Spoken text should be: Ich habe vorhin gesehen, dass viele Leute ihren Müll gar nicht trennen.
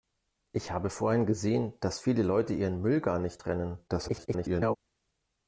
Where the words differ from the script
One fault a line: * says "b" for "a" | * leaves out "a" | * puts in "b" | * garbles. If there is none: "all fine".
* garbles